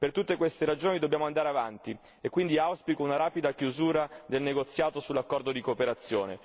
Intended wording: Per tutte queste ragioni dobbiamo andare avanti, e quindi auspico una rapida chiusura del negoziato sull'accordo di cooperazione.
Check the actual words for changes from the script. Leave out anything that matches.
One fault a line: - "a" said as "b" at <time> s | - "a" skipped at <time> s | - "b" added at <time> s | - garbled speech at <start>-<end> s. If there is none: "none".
none